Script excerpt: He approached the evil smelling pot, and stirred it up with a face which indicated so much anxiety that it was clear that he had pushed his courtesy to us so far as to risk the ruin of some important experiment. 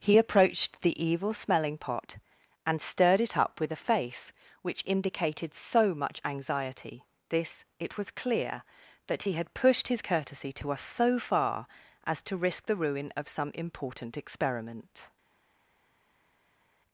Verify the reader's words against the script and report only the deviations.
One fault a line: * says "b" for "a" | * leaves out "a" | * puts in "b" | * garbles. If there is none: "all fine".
* says "this" for "that"